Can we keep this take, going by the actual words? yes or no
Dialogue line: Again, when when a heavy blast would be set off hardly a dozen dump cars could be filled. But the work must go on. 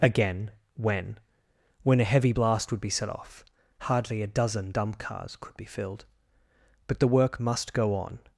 yes